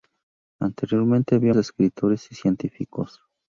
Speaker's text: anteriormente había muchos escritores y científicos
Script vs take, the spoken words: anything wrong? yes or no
yes